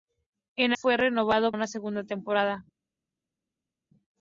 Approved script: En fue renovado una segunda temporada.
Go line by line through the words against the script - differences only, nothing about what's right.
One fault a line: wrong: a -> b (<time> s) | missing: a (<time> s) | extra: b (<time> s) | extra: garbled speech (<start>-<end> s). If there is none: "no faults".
no faults